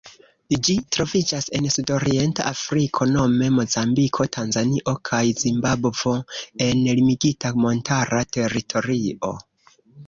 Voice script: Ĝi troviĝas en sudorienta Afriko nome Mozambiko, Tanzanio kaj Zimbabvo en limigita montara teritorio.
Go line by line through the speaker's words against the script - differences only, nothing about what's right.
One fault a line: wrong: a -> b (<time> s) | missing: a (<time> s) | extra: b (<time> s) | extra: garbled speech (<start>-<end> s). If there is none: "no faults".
no faults